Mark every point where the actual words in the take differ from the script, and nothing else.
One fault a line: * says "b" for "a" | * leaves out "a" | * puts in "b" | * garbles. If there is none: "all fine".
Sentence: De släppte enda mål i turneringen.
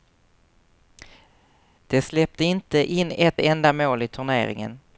* puts in "inte in ett"